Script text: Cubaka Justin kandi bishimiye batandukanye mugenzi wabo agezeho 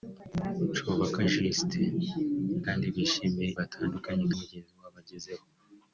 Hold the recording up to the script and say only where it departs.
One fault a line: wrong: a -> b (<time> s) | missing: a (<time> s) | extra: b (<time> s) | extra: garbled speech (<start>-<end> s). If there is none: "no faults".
no faults